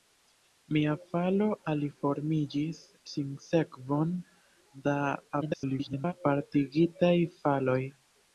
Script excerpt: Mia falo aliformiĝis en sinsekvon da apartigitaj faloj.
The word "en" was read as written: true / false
false